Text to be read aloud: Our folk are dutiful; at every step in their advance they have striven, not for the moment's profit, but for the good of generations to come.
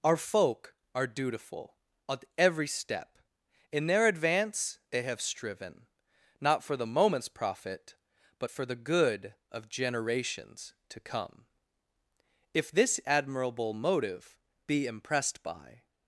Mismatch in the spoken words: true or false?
true